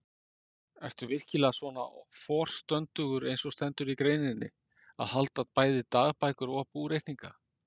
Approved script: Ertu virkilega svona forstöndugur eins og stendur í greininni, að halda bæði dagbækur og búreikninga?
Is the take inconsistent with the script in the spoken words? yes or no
no